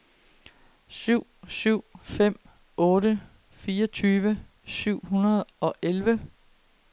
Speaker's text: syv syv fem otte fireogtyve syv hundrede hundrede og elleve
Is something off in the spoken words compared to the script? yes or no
yes